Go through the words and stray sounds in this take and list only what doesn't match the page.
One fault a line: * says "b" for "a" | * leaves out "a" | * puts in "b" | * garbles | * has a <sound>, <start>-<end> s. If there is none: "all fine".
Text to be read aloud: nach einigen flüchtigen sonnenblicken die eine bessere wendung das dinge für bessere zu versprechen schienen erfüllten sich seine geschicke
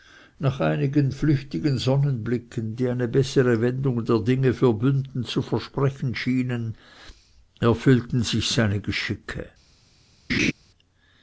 * says "der" for "das"
* says "bünden" for "bessere"
* has a laugh, 10.3-10.5 s